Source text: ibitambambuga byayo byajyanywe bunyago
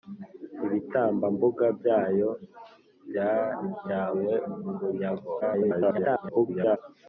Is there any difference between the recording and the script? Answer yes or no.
yes